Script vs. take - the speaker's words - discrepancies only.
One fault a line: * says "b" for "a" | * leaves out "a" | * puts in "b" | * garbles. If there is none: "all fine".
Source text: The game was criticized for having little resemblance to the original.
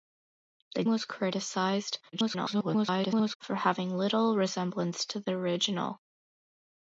* leaves out "game"
* garbles